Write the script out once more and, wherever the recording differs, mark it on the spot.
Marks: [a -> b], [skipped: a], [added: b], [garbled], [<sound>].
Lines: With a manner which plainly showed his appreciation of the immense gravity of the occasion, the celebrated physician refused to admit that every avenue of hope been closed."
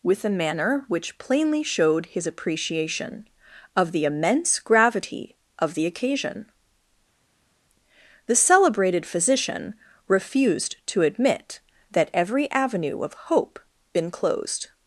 With a manner which plainly showed his appreciation of the immense gravity of the occasion, the celebrated physician refused to admit that every avenue of hope been closed."